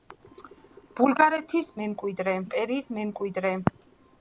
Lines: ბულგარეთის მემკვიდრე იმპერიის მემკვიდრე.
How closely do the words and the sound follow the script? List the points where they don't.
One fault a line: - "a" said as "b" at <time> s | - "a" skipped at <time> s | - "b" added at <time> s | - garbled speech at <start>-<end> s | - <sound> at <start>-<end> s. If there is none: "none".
none